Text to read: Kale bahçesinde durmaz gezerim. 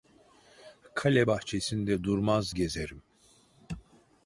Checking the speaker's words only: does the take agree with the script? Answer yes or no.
yes